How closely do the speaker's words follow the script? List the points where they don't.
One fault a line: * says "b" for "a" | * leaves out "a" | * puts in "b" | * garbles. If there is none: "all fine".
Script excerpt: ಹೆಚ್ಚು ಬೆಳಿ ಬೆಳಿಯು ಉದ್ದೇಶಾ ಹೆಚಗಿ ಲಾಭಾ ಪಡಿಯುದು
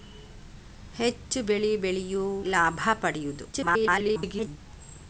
* leaves out "ಉದ್ದೇಶಾ ಹೆಚಗಿ"
* garbles